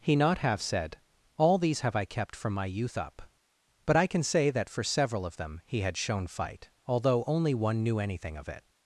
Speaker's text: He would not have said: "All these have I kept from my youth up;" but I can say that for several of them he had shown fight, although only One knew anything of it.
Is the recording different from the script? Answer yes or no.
yes